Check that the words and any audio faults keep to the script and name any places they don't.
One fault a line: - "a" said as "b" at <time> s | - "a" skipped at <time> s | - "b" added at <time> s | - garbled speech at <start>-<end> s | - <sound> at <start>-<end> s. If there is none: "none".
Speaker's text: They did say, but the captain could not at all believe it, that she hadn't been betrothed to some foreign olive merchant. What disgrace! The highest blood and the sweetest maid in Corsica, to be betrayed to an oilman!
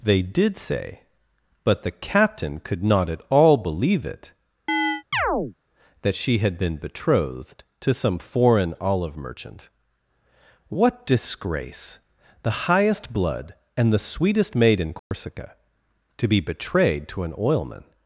- chirp at 4.7-5.5 s
- "hadn't" said as "had" at 6.4 s
- dropout at 15.0-15.1 s